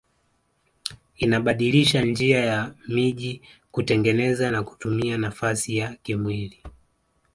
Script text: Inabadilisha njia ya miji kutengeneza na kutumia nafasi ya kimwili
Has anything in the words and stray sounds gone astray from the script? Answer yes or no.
no